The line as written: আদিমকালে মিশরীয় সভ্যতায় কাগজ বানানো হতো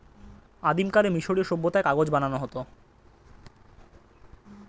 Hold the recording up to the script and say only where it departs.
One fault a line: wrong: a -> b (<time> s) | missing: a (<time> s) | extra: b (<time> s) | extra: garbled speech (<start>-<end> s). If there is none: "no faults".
no faults